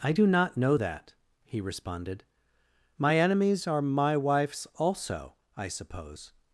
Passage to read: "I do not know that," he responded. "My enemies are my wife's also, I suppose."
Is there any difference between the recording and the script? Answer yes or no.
no